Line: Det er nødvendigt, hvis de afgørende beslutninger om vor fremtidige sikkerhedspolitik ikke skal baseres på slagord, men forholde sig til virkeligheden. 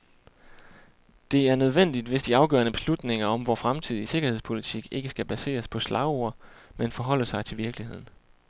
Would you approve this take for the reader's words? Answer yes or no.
yes